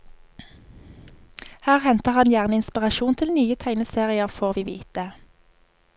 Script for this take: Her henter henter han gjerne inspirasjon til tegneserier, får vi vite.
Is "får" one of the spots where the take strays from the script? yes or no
no